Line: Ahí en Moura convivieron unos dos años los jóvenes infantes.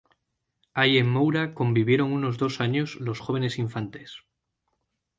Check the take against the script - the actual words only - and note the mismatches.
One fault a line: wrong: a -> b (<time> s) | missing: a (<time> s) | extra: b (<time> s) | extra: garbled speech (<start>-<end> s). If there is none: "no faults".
no faults